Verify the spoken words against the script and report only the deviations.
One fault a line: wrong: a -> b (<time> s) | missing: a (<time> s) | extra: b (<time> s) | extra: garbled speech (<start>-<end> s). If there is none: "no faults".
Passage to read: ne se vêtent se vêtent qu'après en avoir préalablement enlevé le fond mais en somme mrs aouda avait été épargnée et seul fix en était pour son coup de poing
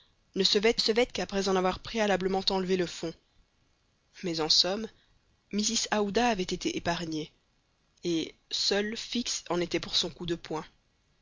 no faults